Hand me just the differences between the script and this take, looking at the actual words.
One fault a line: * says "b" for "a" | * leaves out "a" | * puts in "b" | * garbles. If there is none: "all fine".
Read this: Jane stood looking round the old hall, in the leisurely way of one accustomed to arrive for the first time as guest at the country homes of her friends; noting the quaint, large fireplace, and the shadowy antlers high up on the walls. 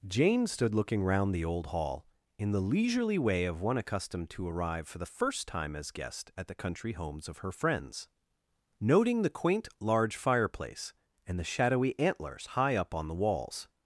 all fine